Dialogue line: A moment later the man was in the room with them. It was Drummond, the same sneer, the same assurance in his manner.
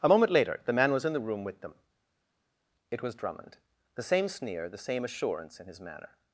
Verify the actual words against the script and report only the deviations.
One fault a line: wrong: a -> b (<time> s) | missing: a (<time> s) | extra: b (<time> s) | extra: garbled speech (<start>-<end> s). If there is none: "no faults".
no faults